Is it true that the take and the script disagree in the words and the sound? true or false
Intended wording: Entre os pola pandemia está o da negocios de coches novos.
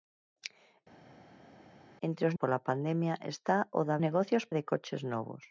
false